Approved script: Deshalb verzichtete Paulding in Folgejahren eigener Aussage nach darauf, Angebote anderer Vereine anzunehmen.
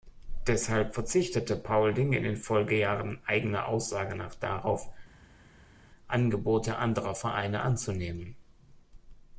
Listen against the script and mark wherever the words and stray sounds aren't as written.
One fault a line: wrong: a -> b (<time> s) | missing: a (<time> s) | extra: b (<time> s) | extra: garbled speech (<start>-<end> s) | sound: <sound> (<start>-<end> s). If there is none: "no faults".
extra: den (2.2 s)